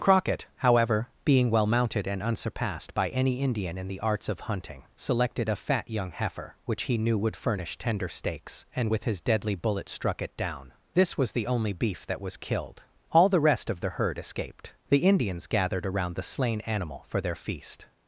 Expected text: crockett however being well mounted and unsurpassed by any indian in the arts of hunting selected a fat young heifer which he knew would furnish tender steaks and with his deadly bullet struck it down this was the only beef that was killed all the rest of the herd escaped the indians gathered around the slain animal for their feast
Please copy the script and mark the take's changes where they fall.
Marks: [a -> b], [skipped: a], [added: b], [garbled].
crockett however being well mounted and unsurpassed by any indian in the arts of hunting selected a fat young heifer which he knew would furnish tender steaks and with his deadly bullet struck it down this was the only beef that was killed all the rest of the herd escaped the indians gathered around the slain animal for their feast